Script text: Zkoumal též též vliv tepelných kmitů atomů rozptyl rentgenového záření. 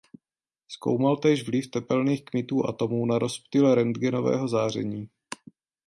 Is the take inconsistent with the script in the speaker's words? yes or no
yes